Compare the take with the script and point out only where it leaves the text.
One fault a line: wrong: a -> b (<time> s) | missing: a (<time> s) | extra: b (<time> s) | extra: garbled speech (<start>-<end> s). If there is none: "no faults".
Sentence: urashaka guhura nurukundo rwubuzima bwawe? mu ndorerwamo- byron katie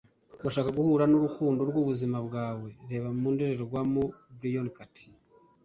extra: reba (2.9 s)